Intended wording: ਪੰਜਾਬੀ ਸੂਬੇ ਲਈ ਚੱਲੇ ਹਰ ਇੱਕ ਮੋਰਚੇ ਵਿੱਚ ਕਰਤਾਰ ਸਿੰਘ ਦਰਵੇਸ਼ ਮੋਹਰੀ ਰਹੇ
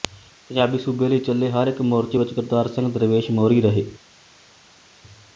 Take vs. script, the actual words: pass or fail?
pass